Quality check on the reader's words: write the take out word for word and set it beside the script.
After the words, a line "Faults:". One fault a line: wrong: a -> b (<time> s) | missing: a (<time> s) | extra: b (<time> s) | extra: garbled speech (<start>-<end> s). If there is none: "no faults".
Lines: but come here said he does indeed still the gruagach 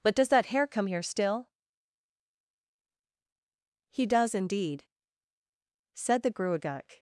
but does that hare come here still he does indeed said the gruagach
Faults:
extra: does that hare (0.1 s)
wrong: said -> still (1.0 s)
wrong: still -> said (5.9 s)